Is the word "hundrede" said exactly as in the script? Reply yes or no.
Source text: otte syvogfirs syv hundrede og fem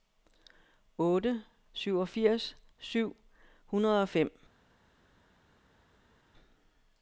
yes